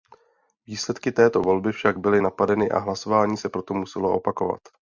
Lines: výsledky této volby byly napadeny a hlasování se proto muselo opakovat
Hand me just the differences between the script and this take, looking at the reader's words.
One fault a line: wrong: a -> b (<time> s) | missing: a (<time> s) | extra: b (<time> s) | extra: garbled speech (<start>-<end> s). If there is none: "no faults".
extra: však (1.7 s)